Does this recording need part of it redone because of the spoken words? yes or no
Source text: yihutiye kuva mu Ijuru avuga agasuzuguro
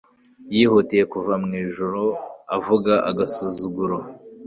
no